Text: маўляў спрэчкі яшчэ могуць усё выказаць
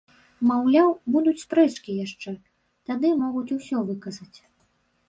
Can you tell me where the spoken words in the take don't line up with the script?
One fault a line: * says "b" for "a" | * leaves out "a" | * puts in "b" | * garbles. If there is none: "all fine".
* puts in "будуць"
* puts in "тады"